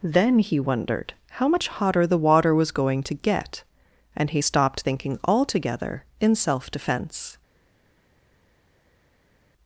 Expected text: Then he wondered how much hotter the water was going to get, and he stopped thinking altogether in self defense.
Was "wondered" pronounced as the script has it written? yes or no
yes